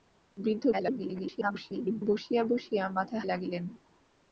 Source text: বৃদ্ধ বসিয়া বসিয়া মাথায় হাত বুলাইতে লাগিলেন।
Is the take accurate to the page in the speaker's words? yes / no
no